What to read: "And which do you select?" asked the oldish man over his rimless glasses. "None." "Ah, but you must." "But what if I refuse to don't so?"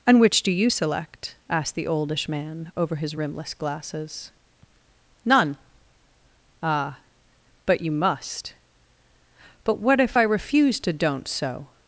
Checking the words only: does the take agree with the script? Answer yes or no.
yes